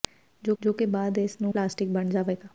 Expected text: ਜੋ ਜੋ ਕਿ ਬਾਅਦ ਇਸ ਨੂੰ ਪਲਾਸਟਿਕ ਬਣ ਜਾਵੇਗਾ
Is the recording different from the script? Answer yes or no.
no